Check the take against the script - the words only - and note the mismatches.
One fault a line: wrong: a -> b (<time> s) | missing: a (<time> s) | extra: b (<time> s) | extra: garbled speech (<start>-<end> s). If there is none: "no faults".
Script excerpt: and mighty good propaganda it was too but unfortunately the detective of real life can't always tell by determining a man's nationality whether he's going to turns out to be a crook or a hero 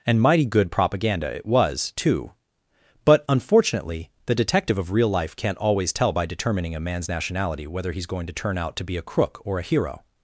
wrong: turns -> turn (8.3 s)